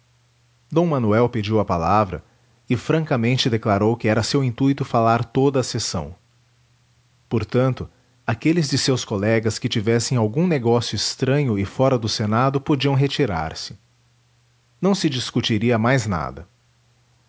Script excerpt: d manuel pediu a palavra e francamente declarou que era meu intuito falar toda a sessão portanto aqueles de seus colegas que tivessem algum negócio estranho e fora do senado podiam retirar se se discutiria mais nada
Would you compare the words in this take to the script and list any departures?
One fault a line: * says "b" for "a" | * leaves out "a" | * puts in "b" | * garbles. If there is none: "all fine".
* says "seu" for "meu"
* puts in "não"